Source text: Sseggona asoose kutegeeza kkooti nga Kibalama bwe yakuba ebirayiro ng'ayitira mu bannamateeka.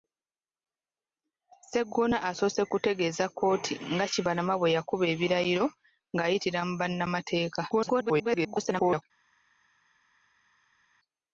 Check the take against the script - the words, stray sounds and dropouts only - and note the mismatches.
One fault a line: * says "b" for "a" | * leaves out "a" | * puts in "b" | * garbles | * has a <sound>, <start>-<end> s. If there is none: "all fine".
* garbles